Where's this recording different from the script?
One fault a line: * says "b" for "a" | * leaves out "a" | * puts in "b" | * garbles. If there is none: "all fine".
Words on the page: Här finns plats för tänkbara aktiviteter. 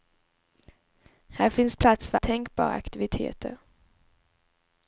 all fine